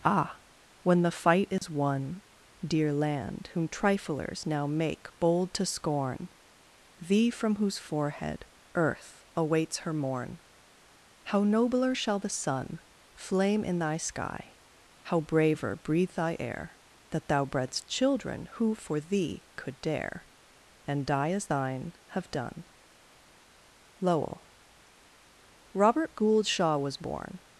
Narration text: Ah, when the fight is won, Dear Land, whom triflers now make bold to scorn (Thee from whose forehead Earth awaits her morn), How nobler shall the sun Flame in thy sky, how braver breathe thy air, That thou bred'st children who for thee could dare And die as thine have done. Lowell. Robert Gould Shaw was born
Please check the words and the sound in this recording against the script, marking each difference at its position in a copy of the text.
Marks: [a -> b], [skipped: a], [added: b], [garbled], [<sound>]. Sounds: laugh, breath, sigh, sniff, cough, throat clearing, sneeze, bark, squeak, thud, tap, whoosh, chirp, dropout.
Ah, when the fight is [dropout] won, Dear Land, whom triflers now make bold to scorn (Thee from whose forehead Earth awaits her morn), How nobler shall the sun Flame in thy sky, how braver breathe thy air, That thou bred'st children who for thee could dare And die as thine have done. Lowell. Robert Gould Shaw was born